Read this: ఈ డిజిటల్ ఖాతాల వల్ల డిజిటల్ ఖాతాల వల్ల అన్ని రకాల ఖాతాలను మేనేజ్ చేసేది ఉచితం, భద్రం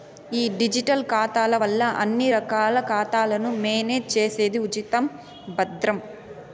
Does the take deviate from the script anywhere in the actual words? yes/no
yes